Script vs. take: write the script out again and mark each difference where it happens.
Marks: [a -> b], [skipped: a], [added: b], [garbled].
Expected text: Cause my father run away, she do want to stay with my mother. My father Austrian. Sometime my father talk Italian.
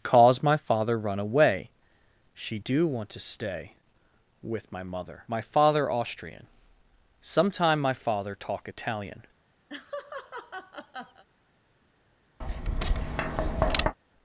Cause my father run away, she do want to stay with my mother. My father Austrian. Sometime my father talk Italian.